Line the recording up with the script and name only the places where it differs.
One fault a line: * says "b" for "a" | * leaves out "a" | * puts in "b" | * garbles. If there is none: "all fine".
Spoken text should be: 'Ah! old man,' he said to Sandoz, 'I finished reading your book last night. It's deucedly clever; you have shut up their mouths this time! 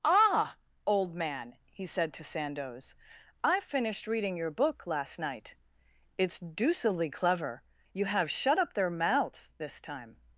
all fine